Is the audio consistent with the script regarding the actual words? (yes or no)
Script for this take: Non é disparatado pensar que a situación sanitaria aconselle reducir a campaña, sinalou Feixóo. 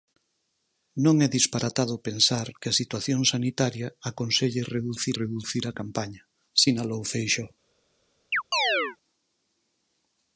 no